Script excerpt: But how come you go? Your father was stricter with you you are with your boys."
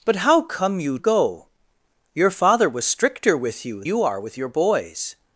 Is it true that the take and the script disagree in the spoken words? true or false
false